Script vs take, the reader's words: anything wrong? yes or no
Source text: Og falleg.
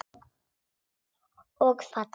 no